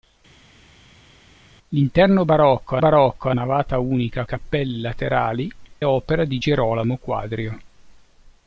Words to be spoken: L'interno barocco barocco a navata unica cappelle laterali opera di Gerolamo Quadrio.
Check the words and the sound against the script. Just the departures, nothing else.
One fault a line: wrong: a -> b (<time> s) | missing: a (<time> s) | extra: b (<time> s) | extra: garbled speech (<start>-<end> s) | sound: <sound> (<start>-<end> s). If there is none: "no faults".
no faults